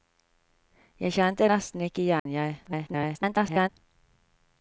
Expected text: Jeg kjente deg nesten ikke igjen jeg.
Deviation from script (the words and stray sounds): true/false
true